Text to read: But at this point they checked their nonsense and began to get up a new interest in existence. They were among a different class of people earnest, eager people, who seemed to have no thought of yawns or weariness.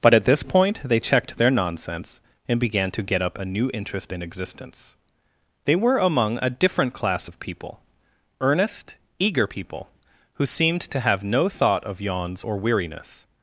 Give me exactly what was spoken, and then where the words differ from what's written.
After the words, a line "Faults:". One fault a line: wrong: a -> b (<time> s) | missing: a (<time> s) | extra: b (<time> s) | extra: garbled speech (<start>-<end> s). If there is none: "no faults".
But at this point they checked their nonsense and began to get up a new interest in existence. They were among a different class of people earnest, eager people, who seemed to have no thought of yawns or weariness.
Faults:
no faults